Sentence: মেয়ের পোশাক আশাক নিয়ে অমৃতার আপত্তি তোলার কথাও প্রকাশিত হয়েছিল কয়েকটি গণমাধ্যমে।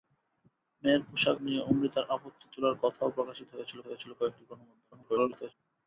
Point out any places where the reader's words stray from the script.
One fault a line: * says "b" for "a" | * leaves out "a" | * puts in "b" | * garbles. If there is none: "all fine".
* leaves out "আশাক"
* puts in "হয়েছিল"
* garbles